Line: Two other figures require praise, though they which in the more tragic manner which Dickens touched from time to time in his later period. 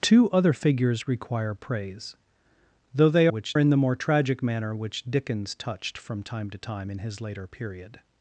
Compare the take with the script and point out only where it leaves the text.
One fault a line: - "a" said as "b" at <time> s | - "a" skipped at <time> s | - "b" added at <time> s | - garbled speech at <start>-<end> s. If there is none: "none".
none